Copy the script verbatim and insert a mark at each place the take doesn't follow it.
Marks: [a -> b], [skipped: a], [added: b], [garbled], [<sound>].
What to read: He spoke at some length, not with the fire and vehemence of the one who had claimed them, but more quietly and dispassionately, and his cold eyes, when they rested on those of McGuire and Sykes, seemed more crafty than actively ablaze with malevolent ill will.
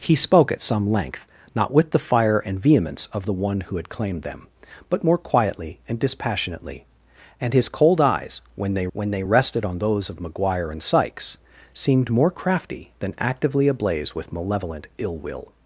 He spoke at some length, not with the fire and vehemence of the one who had claimed them, but more quietly and dispassionately, and his cold eyes, when they [added: when they] rested on those of McGuire and Sykes, seemed more crafty than actively ablaze with malevolent ill will.